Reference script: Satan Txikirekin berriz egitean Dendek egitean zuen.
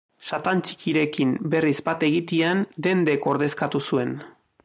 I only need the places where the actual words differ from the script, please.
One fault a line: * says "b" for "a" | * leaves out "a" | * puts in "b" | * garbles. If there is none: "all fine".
* puts in "bat"
* says "ordezkatu" for "egitean"